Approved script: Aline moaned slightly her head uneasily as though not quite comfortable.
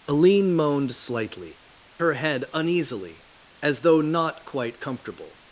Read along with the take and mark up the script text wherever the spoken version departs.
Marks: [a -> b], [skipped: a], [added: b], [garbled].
Aline moaned slightly her head uneasily as though not quite comfortable.